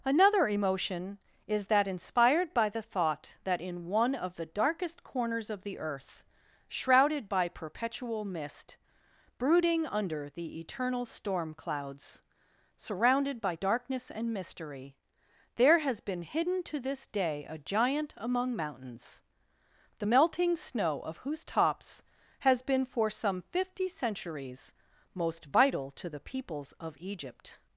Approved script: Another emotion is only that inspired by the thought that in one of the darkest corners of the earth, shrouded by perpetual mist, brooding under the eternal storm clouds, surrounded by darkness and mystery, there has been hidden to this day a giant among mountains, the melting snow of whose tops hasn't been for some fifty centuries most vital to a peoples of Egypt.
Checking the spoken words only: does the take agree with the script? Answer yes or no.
no